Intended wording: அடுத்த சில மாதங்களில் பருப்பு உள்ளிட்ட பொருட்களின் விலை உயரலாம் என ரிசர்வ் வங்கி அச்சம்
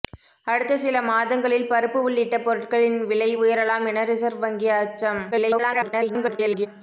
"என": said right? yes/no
yes